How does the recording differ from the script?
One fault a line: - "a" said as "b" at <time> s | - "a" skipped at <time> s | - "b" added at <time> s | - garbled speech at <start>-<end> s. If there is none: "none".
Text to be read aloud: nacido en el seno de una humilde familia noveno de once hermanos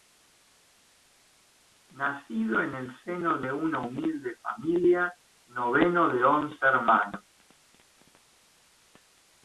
none